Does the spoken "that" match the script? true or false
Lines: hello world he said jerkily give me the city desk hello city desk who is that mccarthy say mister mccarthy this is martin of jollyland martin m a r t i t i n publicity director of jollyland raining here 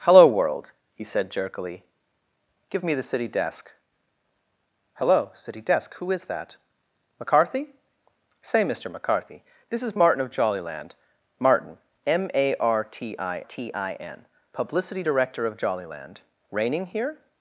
true